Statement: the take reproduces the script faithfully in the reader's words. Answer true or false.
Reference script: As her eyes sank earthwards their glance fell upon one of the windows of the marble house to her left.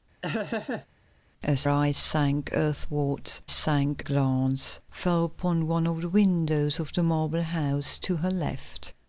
false